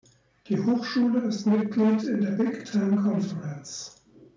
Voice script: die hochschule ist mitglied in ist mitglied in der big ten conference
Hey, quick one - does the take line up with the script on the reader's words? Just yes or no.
no